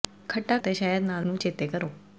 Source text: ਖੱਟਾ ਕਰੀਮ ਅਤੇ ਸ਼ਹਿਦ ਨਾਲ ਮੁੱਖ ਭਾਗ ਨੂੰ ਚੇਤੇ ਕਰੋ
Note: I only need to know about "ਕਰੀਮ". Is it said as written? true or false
false